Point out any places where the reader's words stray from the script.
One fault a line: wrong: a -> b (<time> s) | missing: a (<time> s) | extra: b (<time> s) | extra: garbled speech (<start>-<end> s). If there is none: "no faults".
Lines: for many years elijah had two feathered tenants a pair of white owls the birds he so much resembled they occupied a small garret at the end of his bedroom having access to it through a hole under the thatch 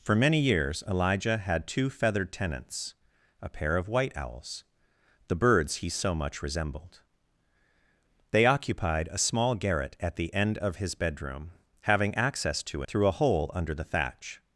missing: it (12.8 s)